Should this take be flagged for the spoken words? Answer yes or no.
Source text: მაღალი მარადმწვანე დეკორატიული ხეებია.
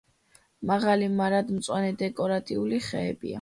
no